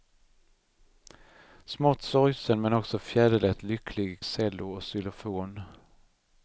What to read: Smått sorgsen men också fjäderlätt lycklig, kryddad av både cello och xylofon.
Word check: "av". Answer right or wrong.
wrong